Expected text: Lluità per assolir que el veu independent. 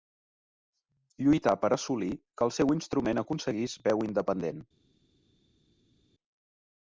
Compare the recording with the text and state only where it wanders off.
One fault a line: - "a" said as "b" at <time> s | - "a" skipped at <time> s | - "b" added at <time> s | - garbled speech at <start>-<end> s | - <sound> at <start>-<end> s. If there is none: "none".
- "seu instrument aconseguís" added at 2.6 s